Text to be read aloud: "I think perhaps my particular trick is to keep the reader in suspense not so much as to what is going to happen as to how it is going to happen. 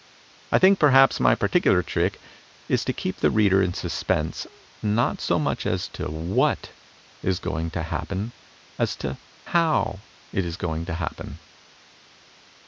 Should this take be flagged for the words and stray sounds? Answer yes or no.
no